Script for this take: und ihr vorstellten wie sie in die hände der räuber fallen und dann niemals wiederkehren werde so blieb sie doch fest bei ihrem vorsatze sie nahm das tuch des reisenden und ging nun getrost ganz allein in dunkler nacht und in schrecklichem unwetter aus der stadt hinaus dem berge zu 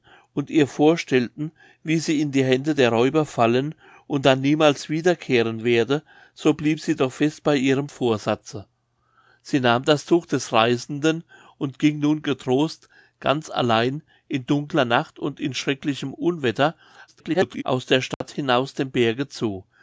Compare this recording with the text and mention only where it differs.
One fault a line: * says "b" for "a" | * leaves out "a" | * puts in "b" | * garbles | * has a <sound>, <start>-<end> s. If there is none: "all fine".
* garbles
* has a dropout, 18.1-18.2 s